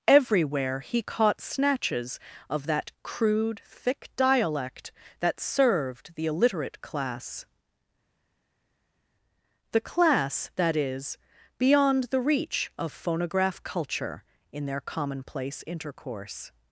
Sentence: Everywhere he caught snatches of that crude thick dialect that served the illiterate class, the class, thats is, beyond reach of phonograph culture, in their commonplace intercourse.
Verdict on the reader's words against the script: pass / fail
fail